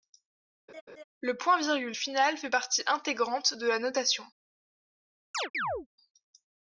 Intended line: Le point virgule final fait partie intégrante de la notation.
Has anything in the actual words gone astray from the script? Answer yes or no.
no